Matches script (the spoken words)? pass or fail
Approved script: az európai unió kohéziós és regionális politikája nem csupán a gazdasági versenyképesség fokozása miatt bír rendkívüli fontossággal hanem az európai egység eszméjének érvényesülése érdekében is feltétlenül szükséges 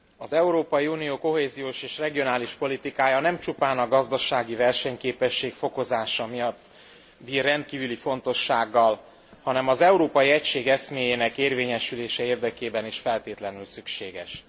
pass